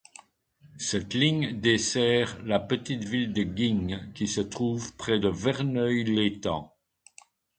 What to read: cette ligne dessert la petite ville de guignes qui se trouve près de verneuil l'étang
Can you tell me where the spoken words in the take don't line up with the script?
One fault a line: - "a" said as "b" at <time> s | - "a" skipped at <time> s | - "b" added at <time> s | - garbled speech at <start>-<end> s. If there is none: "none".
none